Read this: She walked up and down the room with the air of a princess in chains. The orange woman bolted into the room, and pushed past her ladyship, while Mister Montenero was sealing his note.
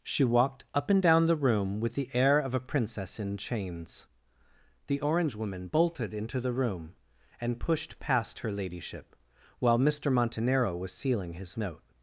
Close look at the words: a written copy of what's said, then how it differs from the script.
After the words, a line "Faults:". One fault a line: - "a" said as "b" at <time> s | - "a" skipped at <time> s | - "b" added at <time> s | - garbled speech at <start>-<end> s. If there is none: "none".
She walked up and down the room with the air of a princess in chains. The orange woman bolted into the room, and pushed past her ladyship, while Mister Montenero was sealing his note.
Faults:
none